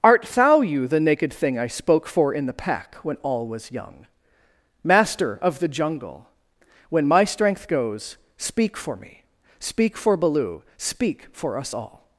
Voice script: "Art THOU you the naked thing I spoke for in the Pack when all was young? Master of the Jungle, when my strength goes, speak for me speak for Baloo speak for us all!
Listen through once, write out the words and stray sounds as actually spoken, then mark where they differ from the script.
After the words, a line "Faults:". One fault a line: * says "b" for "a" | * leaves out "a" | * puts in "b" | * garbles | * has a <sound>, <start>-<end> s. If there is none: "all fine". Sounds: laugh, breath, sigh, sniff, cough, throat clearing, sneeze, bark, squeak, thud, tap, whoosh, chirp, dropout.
"Art THOU you the naked thing I spoke for in the Pack when all was young? Master of the Jungle, when my strength goes, speak for me speak for Baloo speak for us all!
Faults:
all fine